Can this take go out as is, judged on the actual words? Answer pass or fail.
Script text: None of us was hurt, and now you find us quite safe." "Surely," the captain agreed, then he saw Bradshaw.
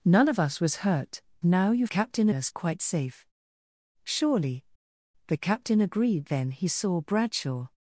fail